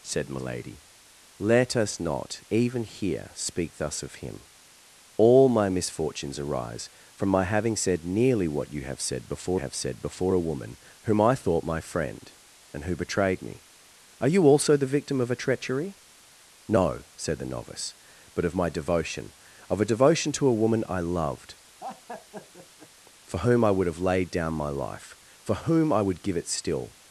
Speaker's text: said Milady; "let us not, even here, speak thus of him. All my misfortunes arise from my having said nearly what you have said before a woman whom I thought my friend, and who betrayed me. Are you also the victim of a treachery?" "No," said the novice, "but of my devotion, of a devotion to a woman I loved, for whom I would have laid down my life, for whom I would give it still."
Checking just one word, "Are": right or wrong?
right